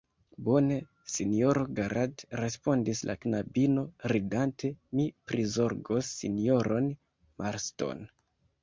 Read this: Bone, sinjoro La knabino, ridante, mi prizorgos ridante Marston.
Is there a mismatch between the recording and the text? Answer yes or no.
yes